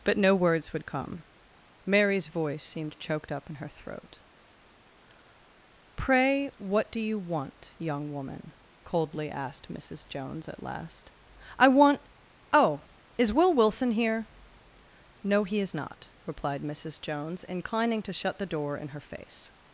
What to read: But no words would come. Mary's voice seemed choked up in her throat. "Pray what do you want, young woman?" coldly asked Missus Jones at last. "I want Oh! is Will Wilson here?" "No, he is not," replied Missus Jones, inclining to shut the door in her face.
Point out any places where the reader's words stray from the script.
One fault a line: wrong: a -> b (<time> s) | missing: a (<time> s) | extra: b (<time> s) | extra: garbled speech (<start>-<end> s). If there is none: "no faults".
no faults